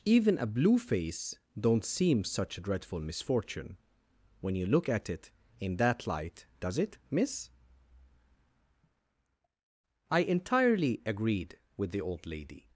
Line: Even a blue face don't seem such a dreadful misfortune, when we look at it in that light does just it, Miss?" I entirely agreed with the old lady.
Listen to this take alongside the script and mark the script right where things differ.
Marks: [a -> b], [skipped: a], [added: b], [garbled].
Even a blue face don't seem such a dreadful misfortune, when [we -> you] look at it in that light does [skipped: just] it, Miss?" I entirely agreed with the old lady.